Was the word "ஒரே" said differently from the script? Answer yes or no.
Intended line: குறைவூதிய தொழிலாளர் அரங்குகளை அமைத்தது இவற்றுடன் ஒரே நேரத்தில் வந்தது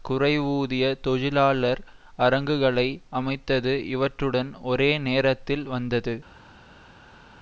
no